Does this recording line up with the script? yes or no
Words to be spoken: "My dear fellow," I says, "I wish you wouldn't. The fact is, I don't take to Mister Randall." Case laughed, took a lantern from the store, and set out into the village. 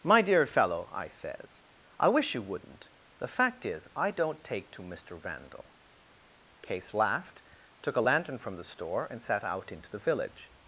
no